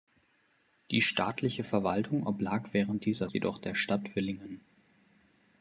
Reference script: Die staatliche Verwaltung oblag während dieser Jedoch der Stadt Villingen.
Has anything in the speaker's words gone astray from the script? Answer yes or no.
no